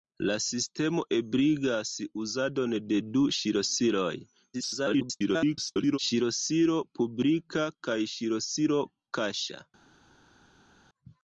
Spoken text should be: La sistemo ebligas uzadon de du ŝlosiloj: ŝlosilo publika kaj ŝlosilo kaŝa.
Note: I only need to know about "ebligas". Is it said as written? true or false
true